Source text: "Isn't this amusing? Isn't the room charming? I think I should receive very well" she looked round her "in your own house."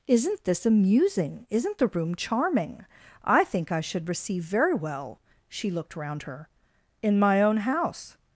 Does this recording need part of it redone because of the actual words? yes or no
yes